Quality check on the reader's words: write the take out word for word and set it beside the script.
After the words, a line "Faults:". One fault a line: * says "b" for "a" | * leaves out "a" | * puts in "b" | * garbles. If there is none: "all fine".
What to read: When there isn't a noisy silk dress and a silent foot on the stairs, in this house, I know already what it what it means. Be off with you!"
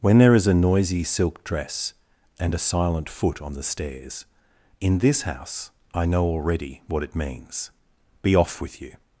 When there is a noisy silk dress and a silent foot on the stairs, in this house, I know already what it means. Be off with you!"
Faults:
* says "is" for "isn't"
* leaves out "what it"